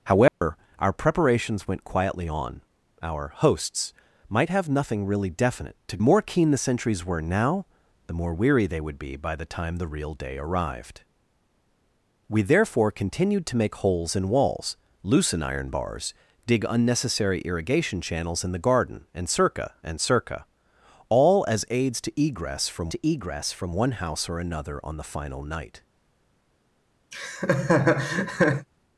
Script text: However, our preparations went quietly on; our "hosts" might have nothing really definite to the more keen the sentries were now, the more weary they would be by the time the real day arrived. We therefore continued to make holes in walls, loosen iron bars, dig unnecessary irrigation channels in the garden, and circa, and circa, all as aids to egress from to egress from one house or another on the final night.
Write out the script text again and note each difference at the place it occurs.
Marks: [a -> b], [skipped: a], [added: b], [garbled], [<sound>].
However, [dropout] our preparations went quietly on; our "hosts" might have nothing really definite to the more keen the sentries were now, the more weary they would be by the time the real day arrived. We therefore continued to make holes in walls, loosen iron bars, dig unnecessary irrigation channels in the garden, and circa, and circa, all as aids to egress from to egress from one house or another on the final night. [laugh]